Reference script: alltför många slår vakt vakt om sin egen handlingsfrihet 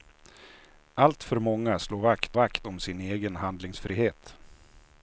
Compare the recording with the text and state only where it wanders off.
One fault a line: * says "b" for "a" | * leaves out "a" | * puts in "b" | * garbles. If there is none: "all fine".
all fine